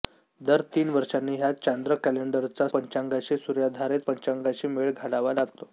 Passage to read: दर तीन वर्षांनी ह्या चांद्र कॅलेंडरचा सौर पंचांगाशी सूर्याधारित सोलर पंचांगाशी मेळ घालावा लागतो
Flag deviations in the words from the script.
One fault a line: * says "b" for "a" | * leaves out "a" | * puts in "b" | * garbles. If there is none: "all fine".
* leaves out "सौर"
* leaves out "सोलर"